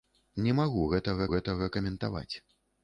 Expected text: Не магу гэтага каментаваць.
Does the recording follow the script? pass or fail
fail